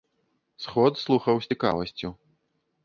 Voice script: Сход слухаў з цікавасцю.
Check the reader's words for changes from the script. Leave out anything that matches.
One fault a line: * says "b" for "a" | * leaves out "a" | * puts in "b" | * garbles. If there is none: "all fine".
all fine